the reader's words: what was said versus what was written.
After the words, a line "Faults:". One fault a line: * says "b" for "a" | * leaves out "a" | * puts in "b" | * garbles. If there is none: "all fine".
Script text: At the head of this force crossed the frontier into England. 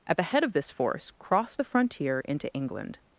At the head of this force crossed the frontier into England.
Faults:
all fine